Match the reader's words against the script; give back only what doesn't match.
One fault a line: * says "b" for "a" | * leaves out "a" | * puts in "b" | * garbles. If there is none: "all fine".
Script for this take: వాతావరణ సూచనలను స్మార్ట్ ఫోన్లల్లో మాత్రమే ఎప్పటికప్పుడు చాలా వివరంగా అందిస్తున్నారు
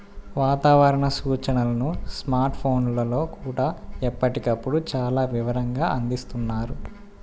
* says "కూడా" for "మాత్రమే"